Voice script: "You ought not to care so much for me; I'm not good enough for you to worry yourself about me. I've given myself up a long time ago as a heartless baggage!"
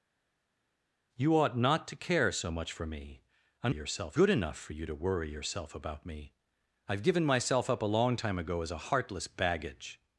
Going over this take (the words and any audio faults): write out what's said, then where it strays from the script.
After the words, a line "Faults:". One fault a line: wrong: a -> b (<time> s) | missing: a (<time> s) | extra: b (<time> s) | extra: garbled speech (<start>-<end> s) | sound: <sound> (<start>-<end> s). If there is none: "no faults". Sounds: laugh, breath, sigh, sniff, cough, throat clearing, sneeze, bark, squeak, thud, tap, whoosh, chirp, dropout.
"You ought not to care so much for me; I'm yourself good enough for you to worry yourself about me. I've given myself up a long time ago as a heartless baggage!"
Faults:
wrong: not -> yourself (3.7 s)